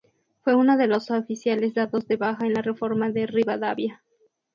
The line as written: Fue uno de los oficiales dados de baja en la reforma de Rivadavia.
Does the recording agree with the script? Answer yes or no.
yes